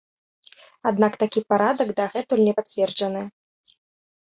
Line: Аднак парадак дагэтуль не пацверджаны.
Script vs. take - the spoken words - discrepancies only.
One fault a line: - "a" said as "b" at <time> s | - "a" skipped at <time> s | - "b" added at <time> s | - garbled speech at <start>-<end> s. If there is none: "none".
- "такі" added at 1.2 s